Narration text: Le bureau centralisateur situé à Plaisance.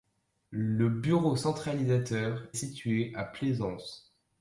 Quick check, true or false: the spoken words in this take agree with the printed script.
true